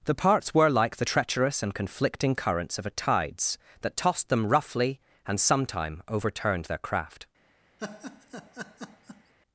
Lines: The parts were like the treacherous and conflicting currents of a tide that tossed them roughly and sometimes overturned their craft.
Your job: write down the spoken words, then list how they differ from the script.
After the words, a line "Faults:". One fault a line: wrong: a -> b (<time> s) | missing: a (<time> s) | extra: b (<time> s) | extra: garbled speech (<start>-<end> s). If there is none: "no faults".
The parts were like the treacherous and conflicting currents of a tides that tossed them roughly and sometime overturned their craft.
Faults:
wrong: tide -> tides (2.9 s)
wrong: sometimes -> sometime (5.4 s)